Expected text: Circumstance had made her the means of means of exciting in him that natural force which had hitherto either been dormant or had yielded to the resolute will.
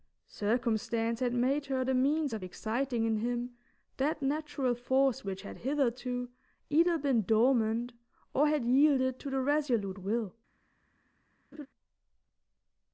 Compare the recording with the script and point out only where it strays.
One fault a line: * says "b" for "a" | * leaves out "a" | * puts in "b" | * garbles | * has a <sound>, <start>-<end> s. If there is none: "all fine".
* leaves out "means of"
* has a laugh, 11.5-11.7 s